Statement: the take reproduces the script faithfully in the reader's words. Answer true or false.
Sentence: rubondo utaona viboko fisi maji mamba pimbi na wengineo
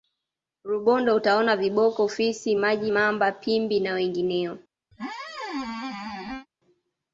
true